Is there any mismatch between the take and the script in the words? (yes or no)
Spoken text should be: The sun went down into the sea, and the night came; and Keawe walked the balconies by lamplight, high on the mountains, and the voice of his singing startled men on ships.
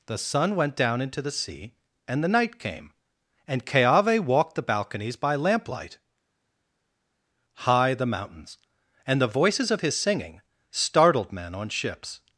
yes